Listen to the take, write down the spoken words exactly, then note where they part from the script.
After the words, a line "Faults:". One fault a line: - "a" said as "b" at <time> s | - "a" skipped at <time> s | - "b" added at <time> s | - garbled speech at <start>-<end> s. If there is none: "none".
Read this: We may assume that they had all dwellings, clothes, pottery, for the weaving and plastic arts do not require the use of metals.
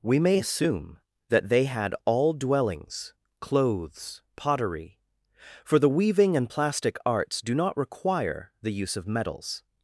We may assume that they had all dwellings, clothes, pottery, for the weaving and plastic arts do not require the use of metals.
Faults:
none